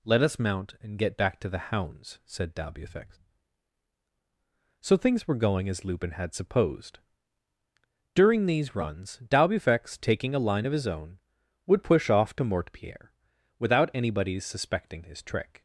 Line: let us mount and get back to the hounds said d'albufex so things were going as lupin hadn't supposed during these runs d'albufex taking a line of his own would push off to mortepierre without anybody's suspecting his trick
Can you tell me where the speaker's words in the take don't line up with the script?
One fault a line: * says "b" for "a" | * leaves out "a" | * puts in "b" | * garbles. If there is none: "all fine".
* says "had" for "hadn't"